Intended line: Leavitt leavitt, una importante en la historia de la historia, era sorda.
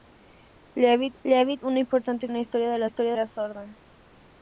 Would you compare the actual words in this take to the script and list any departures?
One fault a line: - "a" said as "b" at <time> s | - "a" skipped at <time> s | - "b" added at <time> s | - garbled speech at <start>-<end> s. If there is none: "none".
none